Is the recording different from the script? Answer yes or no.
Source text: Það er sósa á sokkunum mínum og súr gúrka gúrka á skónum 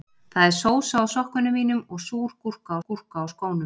no